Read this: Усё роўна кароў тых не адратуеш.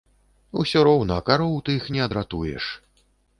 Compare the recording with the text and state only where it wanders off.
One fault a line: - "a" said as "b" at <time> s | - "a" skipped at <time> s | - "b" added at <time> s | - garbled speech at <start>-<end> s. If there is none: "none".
none